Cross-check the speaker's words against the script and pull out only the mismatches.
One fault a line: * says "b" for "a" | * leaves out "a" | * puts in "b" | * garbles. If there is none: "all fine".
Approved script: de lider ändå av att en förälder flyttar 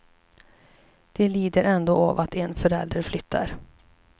all fine